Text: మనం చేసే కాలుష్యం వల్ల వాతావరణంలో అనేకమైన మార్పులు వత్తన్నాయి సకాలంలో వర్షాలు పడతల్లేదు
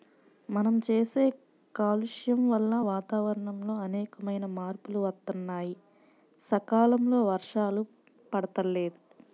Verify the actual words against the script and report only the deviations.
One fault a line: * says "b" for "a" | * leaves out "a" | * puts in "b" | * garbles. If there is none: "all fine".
all fine